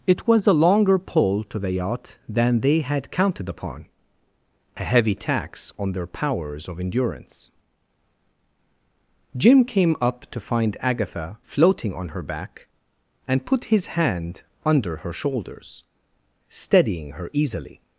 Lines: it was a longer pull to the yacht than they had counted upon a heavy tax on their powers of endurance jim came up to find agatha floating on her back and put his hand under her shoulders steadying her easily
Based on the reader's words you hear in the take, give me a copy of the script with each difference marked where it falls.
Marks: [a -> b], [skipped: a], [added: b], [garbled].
it was a longer pull to the yacht than they had counted upon a heavy tax on their powers of endurance jim came up to find agatha floating on her back and put his hand under her shoulders steadying her easily